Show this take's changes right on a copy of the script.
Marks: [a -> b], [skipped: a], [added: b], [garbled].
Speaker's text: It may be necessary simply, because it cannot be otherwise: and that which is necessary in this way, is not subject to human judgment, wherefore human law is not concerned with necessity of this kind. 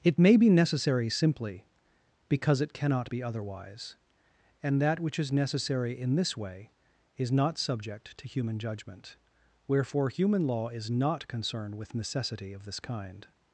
It may be necessary simply, because it cannot be otherwise: and that which is necessary in this way, is not subject to human judgment, wherefore human law is not concerned with necessity of this kind.